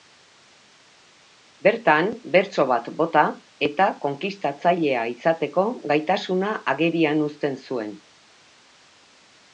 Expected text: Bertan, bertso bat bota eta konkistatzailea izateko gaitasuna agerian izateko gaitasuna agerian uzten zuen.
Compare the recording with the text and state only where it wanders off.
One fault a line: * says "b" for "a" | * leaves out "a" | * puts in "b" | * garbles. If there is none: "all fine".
* leaves out "izateko gaitasuna agerian"